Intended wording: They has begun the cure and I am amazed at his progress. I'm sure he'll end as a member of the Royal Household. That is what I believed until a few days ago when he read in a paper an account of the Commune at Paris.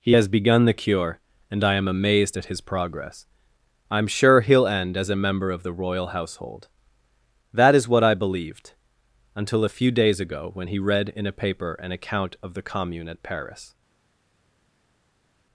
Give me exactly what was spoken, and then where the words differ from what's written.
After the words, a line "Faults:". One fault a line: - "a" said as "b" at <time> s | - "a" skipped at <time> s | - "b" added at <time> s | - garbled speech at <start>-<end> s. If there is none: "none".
He has begun the cure and I am amazed at his progress. I'm sure he'll end as a member of the Royal Household. That is what I believed until a few days ago when he read in a paper an account of the Commune at Paris.
Faults:
- "They" said as "He" at 0.0 s